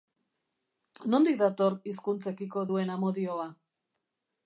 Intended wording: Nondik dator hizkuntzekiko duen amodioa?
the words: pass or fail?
pass